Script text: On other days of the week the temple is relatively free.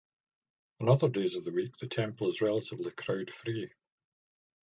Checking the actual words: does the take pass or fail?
fail